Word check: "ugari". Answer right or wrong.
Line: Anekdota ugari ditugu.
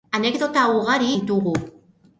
right